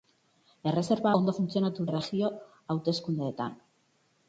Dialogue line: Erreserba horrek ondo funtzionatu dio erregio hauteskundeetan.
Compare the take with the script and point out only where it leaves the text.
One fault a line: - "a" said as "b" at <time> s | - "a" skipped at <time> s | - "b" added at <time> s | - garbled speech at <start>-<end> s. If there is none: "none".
- "horrek" skipped at 1.1 s
- "dio" skipped at 1.9 s